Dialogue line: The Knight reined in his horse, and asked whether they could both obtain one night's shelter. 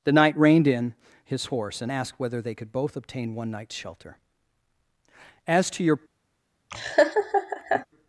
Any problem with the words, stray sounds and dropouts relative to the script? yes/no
yes